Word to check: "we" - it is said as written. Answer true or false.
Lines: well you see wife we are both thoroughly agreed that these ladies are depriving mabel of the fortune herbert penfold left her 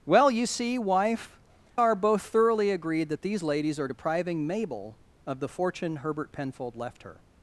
false